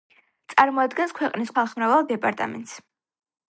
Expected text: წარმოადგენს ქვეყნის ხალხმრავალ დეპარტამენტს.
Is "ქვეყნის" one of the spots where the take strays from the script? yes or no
no